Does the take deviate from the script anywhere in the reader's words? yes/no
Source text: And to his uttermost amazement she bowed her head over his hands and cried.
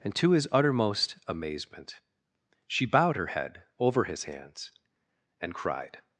no